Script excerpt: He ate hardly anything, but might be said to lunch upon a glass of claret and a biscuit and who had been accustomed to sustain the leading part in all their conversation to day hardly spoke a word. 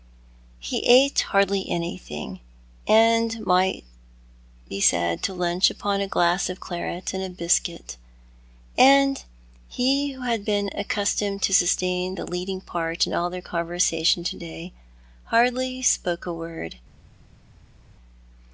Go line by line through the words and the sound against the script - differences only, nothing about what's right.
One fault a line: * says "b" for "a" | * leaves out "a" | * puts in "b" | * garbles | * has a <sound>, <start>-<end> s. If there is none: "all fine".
* says "and" for "but"
* puts in "he"